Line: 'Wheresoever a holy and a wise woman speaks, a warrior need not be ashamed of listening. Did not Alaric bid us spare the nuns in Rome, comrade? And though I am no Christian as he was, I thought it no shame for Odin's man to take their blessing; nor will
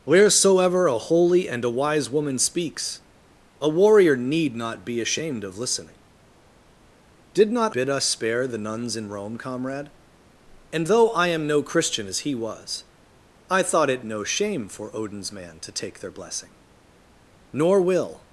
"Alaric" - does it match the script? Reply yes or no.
no